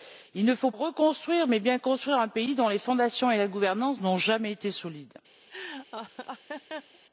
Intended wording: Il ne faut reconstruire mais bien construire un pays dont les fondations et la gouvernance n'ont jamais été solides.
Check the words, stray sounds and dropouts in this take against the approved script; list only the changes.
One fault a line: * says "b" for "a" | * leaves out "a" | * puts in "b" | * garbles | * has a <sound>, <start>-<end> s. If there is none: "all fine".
* has a laugh, 5.5-7.0 s